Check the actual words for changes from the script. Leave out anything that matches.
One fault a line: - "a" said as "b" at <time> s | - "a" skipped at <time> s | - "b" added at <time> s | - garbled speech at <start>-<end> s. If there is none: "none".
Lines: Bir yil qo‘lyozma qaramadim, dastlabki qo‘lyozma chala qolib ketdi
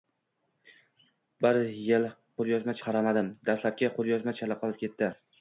none